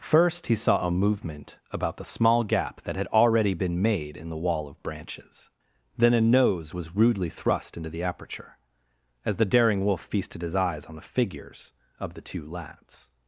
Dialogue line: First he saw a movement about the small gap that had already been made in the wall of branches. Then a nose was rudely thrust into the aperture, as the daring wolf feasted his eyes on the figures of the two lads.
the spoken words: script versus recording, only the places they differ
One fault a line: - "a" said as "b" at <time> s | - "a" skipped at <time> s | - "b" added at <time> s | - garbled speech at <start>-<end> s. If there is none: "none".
none